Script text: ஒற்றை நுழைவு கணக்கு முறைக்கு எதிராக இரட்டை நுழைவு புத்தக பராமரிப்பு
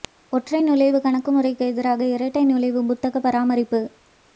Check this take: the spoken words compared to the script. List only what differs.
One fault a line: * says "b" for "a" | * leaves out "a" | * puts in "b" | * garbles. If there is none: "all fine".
all fine